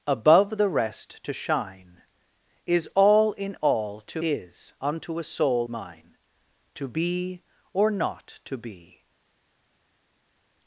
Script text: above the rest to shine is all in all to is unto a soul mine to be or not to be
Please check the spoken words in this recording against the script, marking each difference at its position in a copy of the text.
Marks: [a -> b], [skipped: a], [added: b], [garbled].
above the rest to shine is all in all to is unto a soul mine to be or not to be